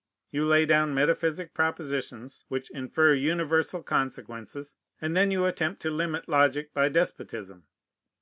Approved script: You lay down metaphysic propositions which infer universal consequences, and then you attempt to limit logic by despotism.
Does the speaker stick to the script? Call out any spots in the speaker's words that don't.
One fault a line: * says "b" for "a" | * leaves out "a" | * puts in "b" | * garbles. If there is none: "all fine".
all fine